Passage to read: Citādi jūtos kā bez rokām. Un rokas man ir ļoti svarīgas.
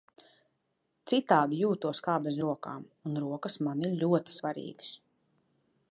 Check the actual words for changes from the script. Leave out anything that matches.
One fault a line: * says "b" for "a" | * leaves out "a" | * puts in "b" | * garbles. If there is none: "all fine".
all fine